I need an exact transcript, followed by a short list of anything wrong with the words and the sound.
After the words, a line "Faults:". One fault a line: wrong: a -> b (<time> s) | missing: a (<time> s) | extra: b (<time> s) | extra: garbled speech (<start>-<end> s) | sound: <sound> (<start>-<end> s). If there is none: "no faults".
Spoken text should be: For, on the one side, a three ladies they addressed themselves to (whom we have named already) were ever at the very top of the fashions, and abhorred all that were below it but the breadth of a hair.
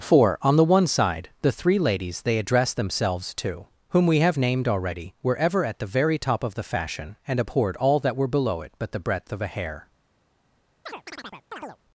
For, on the one side, the three ladies they addressed themselves to (whom we have named already) were ever at the very top of the fashion, and abhorred all that were below it but the breadth of a hair.
Faults:
wrong: a -> the (1.4 s)
wrong: fashions -> fashion (6.6 s)
sound: chirp (10.9-11.8 s)